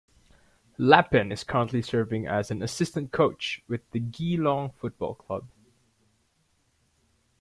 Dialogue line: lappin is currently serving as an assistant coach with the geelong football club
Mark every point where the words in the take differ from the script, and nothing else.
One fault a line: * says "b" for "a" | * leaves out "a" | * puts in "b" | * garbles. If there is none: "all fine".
all fine